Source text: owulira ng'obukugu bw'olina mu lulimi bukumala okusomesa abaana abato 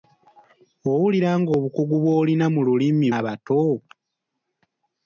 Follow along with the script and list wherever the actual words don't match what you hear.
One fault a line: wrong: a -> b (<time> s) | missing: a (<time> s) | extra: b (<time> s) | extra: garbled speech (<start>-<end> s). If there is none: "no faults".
missing: bukumala okusomesa abaana (3.1 s)